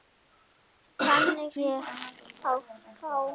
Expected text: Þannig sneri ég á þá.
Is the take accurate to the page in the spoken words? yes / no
no